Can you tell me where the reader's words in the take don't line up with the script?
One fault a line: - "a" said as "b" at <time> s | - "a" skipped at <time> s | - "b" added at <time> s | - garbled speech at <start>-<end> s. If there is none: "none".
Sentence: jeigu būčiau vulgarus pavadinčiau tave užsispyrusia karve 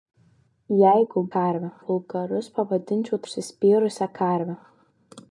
- "būčiau" said as "karve" at 1.4 s
- "tave" skipped at 3.2 s